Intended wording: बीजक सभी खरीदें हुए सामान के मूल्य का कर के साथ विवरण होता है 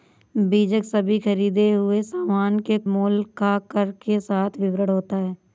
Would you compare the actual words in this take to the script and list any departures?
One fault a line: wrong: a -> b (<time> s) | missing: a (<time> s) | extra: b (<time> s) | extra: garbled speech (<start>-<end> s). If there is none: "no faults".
no faults